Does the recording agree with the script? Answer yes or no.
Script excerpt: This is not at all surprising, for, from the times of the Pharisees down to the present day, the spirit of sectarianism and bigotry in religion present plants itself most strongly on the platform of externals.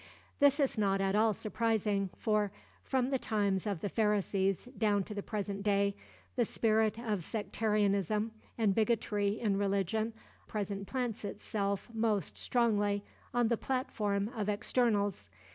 yes